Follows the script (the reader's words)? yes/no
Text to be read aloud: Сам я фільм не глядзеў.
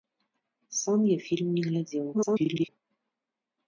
no